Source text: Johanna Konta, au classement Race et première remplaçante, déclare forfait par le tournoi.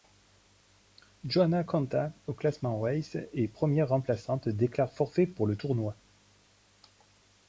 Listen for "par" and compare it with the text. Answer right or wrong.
wrong